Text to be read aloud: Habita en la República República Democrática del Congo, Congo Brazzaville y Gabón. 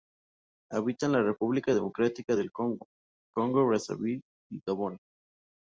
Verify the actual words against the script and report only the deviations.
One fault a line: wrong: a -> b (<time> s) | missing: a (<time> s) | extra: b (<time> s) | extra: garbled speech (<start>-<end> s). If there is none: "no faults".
missing: República (1.8 s)